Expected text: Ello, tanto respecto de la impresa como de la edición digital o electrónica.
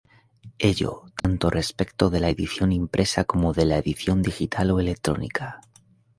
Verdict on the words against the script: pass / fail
fail